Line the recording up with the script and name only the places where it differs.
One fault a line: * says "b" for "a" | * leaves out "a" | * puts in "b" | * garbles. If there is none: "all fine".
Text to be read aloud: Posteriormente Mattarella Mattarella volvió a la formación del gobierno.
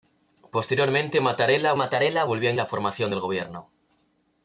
all fine